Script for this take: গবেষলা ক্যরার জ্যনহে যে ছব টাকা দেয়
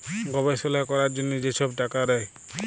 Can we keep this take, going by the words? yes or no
yes